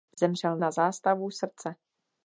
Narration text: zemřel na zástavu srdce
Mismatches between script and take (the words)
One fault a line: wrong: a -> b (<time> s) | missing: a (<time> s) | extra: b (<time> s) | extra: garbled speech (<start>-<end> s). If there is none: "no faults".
no faults